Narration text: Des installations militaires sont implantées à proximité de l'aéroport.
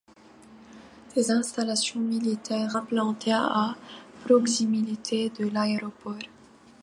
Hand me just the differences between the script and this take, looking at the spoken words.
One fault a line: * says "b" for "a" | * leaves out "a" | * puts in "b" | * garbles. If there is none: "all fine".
* leaves out "sont"